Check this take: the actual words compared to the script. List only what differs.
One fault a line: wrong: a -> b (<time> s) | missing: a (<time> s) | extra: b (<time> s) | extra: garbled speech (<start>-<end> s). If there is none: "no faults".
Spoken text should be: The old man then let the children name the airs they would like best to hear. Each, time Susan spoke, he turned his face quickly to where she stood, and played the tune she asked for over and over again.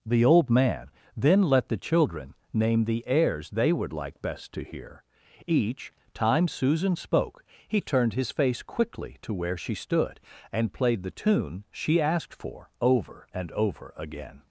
no faults